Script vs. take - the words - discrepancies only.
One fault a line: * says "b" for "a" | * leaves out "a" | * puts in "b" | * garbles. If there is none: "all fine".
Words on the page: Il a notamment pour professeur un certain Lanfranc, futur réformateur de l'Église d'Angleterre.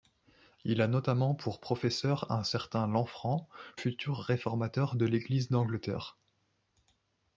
all fine